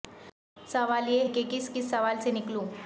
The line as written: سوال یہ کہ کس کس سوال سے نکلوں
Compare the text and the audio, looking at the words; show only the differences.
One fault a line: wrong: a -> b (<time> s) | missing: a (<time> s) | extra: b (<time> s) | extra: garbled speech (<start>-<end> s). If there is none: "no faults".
no faults